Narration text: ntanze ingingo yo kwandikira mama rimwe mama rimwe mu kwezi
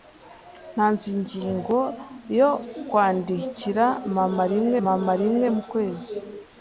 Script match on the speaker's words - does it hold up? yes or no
yes